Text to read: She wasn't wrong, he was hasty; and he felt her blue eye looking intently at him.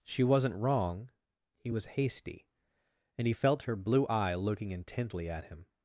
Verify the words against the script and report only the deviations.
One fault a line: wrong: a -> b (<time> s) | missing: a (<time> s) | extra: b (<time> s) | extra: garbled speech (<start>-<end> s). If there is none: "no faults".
no faults